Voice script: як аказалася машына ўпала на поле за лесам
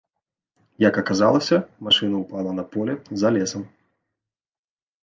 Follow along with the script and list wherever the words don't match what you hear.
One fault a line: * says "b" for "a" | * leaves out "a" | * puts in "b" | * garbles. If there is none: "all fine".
all fine